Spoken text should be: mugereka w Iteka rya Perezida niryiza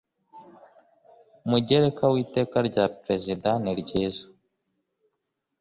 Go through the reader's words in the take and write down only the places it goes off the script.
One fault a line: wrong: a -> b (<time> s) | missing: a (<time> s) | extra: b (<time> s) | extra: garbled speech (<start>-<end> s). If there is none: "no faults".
no faults